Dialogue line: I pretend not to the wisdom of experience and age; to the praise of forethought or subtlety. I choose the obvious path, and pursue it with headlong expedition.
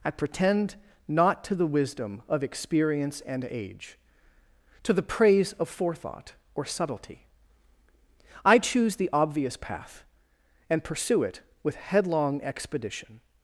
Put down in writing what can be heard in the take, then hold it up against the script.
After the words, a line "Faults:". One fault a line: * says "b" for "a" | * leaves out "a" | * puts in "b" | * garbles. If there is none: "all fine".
I pretend not to the wisdom of experience and age; to the praise of forethought or subtlety. I choose the obvious path, and pursue it with headlong expedition.
Faults:
all fine